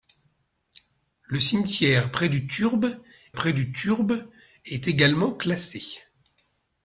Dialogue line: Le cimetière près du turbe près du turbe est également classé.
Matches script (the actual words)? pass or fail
pass